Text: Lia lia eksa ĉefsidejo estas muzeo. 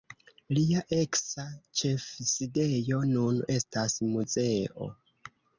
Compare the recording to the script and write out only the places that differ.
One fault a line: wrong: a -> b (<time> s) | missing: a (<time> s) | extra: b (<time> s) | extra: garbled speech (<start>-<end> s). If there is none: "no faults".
missing: lia (0.8 s)
extra: nun (3.1 s)